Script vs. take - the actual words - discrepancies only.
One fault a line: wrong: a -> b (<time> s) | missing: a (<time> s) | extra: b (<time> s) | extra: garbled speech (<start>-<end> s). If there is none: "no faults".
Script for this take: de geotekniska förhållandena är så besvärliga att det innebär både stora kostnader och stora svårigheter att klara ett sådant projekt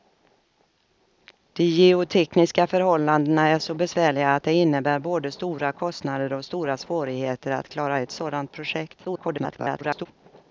extra: garbled speech (9.0-10.1 s)